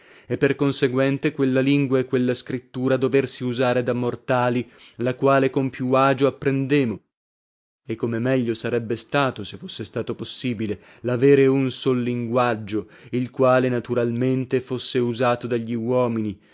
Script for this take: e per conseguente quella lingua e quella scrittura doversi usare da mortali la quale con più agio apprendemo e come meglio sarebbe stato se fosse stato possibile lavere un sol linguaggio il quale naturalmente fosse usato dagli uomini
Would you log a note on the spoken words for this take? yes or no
no